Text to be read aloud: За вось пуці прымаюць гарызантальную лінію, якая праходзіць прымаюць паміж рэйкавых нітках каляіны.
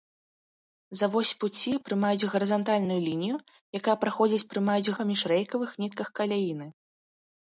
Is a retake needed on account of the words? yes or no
no